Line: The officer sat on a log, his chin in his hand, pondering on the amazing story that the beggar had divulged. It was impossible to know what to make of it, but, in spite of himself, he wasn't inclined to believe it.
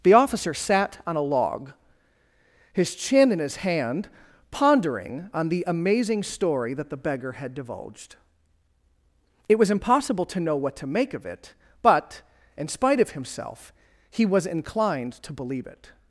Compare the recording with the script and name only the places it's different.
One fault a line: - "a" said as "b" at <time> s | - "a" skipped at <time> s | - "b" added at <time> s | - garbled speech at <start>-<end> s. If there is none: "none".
- "wasn't" said as "was" at 14.2 s